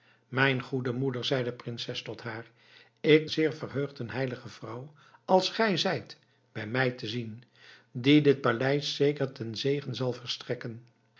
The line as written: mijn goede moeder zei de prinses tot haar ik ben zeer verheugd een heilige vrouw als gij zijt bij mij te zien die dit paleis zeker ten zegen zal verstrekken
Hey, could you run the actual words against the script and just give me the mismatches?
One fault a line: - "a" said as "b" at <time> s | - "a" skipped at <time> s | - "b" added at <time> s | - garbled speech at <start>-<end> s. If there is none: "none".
- "ben" skipped at 3.3 s